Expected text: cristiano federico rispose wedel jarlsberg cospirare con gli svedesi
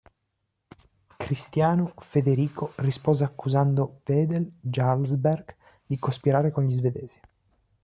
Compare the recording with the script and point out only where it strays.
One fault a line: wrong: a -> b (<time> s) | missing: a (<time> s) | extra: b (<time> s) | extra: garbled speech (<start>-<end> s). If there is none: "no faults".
extra: accusando (3.2 s)
extra: di (5.8 s)